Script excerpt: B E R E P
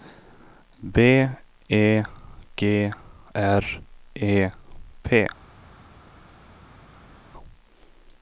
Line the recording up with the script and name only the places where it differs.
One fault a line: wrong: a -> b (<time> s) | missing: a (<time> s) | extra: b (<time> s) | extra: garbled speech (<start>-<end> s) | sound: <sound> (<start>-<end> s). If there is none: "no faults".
extra: G (2.6 s)